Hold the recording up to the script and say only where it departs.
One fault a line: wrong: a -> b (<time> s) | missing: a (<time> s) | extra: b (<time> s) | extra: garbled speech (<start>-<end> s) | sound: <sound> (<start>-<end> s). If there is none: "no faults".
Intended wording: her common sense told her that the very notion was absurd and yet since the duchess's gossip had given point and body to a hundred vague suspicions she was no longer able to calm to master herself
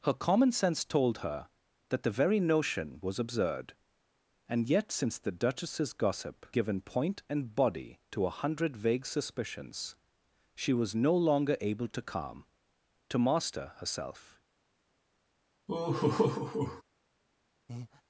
missing: had (6.5 s)
sound: laugh (15.7-16.8 s)
sound: breath (17.7-18.0 s)